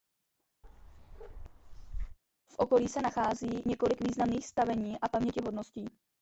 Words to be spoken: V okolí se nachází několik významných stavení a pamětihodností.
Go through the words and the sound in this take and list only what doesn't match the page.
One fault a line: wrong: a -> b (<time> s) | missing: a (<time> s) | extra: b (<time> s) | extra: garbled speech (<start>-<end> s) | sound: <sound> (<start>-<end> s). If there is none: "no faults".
sound: bark (0.6-2.2 s)